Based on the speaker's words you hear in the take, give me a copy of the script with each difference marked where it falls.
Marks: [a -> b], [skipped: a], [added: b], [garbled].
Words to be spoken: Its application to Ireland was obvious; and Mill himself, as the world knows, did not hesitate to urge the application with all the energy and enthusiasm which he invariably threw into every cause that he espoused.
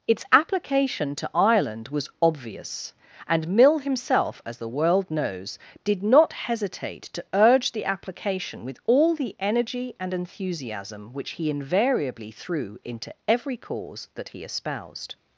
Its application to Ireland was obvious; and Mill himself, as the world knows, did not hesitate to urge the application with all the energy and enthusiasm which he invariably threw into every cause that he espoused.